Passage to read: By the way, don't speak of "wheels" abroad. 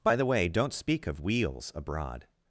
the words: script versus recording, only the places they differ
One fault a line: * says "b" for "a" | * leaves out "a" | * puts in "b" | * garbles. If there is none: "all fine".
all fine